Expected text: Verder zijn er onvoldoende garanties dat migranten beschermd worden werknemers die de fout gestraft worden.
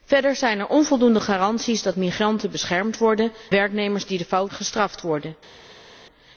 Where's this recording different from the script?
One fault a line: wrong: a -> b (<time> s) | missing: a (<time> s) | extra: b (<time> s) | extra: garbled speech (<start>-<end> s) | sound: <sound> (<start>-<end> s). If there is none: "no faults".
no faults